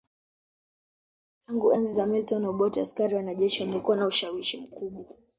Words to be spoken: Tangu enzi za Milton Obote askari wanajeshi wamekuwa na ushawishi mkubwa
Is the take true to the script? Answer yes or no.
yes